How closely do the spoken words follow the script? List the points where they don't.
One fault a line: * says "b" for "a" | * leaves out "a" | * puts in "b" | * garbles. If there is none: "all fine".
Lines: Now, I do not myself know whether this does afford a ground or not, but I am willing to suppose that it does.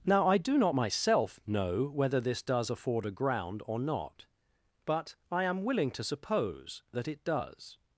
all fine